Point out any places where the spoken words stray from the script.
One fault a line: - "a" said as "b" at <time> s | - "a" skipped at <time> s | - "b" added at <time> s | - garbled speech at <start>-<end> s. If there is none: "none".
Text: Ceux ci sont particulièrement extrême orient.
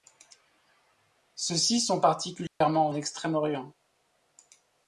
none